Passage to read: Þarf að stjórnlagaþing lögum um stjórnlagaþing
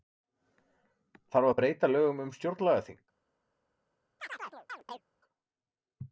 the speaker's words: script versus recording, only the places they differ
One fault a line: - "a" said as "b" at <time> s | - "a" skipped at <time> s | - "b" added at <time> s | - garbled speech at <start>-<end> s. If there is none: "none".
- "stjórnlagaþing" said as "breyta" at 1.6 s